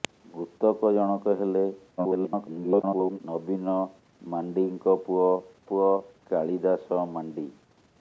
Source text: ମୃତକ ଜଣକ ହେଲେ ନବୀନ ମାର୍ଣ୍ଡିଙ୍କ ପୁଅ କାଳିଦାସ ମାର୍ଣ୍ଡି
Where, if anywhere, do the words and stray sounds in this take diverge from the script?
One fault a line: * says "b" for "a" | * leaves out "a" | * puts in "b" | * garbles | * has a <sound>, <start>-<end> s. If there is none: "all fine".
* garbles
* puts in "ପୁଅ"